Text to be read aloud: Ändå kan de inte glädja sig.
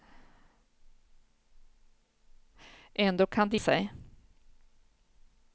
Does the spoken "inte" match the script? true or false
false